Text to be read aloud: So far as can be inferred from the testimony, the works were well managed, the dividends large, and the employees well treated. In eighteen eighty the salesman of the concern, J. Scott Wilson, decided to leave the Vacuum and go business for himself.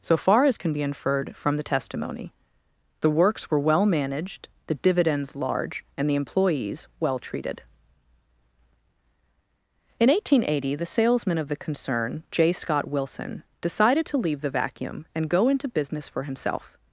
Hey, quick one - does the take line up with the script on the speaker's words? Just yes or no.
no